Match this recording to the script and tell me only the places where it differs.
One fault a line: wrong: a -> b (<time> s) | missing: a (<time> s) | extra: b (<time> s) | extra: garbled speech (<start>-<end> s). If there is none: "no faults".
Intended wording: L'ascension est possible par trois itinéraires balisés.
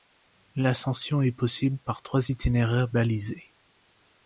no faults